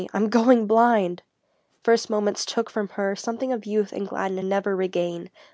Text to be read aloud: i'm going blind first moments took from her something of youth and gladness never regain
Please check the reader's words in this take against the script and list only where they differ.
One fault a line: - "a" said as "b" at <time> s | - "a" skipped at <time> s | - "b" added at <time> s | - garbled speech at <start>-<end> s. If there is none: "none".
none